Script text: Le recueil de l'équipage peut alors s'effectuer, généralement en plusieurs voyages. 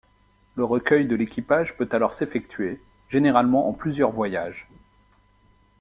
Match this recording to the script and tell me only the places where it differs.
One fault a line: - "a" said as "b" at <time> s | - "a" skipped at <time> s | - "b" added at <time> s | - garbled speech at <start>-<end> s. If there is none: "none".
none